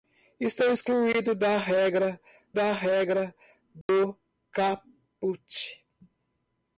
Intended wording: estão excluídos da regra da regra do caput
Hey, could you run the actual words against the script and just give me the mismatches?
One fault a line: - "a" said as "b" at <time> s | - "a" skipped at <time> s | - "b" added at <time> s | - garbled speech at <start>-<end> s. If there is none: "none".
none